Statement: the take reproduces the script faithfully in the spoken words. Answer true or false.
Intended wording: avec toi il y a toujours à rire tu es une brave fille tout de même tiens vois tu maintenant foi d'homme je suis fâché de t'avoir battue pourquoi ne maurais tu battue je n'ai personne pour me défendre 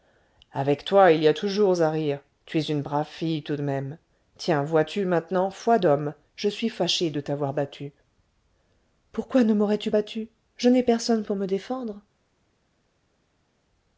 true